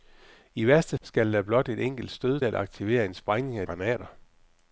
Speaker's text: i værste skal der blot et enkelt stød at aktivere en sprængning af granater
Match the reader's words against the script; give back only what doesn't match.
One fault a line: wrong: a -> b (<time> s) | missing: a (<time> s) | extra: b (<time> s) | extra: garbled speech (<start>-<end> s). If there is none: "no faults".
no faults